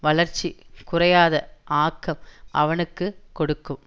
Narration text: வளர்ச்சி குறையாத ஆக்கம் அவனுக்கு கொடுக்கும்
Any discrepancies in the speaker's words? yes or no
no